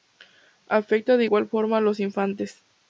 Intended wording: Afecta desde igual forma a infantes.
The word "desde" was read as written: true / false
false